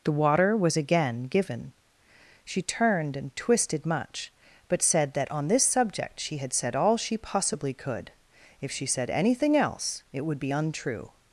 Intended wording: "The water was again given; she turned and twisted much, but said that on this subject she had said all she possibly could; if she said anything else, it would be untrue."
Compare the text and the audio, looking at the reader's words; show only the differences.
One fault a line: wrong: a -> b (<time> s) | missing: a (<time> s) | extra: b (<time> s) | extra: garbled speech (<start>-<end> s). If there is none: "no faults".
no faults